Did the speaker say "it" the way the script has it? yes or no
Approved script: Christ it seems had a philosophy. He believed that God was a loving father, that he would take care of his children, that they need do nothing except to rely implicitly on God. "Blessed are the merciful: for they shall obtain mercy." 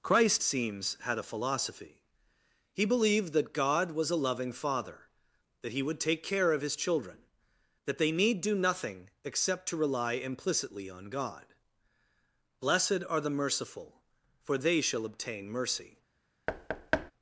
no